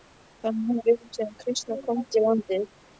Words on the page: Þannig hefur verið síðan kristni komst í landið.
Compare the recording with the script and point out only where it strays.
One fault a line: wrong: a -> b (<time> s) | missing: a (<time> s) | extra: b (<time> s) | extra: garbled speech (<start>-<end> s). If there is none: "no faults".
no faults